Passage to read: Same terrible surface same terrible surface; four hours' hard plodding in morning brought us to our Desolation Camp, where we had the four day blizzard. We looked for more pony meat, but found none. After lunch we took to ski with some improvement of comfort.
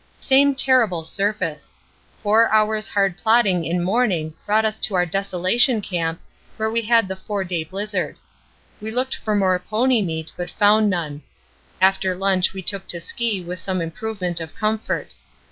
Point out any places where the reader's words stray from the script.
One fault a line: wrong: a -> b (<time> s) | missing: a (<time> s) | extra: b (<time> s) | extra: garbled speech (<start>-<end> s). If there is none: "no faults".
missing: same terrible surface (1.8 s)